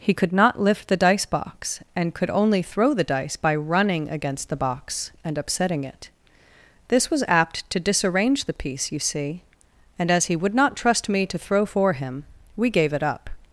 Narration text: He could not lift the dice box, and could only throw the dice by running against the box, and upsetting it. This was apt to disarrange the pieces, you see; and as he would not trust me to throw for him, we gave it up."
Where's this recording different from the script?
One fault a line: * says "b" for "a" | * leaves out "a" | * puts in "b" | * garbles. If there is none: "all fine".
* says "piece" for "pieces"